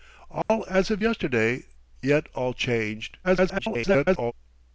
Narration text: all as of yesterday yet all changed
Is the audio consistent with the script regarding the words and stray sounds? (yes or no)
no